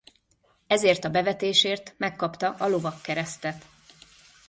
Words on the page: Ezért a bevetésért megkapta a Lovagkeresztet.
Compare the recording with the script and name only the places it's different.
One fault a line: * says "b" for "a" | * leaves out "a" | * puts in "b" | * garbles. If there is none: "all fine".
all fine